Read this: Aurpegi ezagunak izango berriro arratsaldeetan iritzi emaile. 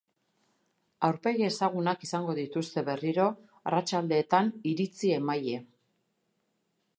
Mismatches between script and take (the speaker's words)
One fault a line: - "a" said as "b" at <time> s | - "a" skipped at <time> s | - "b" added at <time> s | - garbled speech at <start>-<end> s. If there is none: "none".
- "dituzte" added at 2.4 s